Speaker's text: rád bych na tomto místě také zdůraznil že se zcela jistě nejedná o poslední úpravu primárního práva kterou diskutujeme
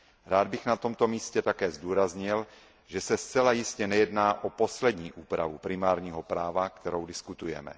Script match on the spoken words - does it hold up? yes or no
yes